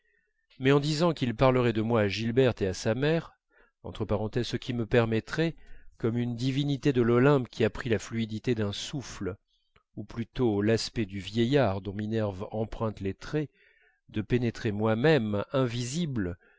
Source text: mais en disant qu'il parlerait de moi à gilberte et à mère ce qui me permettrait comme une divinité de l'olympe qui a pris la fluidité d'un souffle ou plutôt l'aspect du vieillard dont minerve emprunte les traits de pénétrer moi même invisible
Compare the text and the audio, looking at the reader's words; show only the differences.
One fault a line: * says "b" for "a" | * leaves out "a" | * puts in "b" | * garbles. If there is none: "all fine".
* puts in "sa"